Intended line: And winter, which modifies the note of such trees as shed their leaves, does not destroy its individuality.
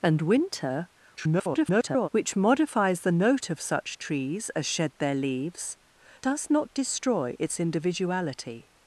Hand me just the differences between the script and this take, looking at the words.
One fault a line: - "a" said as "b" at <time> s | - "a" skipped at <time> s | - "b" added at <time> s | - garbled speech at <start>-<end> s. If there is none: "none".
- garbled speech at 1.2-2.1 s